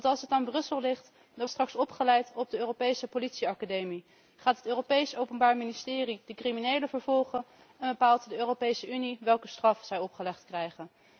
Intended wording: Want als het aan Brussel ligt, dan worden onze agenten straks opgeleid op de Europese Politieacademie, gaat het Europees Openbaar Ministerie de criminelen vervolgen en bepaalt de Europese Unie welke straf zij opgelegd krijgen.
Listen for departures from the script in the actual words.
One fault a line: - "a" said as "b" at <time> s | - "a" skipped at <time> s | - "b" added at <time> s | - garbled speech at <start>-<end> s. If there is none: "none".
- "worden onze agenten" skipped at 1.5 s